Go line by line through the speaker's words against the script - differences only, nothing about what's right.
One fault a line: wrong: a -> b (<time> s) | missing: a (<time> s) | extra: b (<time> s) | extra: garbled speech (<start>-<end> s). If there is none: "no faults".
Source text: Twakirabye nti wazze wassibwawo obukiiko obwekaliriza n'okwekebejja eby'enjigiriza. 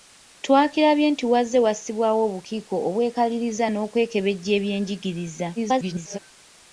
extra: garbled speech (5.6-6.2 s)